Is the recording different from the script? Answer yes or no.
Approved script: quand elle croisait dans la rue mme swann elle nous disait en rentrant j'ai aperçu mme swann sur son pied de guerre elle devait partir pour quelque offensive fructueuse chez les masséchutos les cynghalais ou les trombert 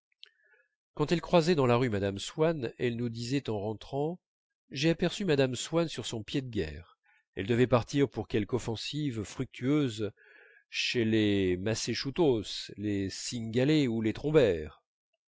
no